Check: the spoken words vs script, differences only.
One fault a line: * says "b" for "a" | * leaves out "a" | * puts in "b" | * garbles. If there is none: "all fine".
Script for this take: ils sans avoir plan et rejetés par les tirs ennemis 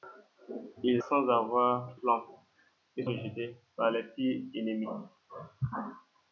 all fine